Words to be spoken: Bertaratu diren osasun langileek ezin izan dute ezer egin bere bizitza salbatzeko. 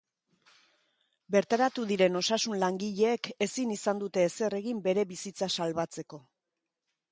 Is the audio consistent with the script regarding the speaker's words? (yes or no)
yes